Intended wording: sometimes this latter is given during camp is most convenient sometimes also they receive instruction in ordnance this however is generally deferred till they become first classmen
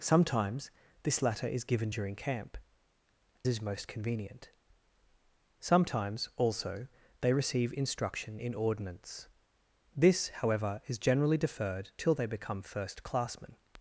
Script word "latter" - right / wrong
right